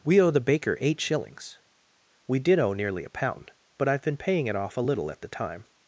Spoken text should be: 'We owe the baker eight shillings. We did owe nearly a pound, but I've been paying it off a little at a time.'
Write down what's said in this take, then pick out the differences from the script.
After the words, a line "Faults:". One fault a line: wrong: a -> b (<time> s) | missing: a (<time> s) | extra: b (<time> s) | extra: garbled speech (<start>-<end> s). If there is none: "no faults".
'We owe the baker eight shillings. We did owe nearly a pound, but I've been paying it off a little at the time.'
Faults:
wrong: a -> the (5.2 s)